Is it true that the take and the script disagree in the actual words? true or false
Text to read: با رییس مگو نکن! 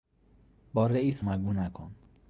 false